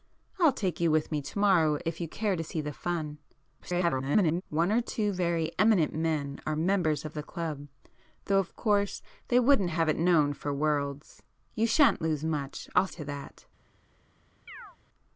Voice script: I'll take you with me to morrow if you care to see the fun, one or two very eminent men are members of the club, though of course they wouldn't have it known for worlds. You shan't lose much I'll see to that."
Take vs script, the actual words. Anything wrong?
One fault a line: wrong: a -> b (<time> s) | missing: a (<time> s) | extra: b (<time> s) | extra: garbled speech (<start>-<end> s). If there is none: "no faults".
extra: garbled speech (3.6-4.4 s)
missing: see (12.9 s)